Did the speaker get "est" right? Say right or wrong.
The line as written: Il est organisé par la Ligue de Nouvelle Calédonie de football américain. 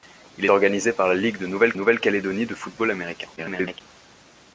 wrong